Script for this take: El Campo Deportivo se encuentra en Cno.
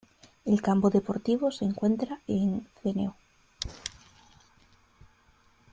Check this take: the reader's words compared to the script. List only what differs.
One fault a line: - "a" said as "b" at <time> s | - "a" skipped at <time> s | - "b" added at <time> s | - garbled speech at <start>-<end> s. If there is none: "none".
none